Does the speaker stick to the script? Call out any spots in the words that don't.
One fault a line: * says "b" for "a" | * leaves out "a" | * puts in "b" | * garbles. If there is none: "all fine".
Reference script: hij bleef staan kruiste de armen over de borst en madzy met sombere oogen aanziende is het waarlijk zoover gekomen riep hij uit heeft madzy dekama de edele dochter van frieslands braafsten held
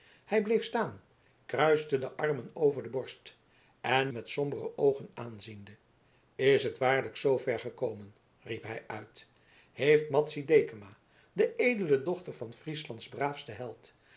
* leaves out "madzy"